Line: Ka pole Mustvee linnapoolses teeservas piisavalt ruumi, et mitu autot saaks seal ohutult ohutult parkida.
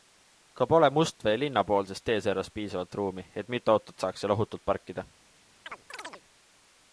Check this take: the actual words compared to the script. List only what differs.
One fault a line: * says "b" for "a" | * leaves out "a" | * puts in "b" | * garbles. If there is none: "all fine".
* leaves out "ohutult"